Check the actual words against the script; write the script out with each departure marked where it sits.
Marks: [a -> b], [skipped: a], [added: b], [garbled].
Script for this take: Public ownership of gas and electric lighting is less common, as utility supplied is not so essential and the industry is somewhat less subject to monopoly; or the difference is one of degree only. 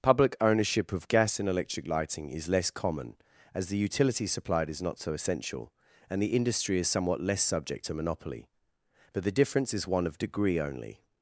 Public ownership of gas and electric lighting is less common, as [added: the] utility supplied is not so essential and the industry is somewhat less subject to monopoly; [or -> but] the difference is one of degree only.